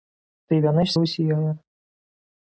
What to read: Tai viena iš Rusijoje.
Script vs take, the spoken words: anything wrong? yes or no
no